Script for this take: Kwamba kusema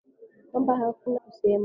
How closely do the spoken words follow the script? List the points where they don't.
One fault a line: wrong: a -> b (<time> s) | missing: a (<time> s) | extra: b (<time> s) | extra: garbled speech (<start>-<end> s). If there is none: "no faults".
no faults